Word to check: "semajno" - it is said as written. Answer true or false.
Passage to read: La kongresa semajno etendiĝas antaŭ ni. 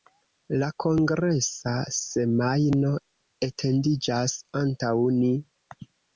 true